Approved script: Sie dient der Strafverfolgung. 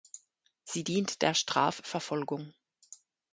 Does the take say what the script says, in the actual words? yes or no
yes